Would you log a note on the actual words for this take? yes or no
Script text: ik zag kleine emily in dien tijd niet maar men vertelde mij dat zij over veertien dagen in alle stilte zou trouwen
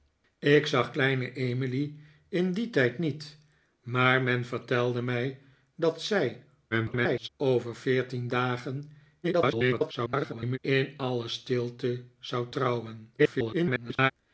yes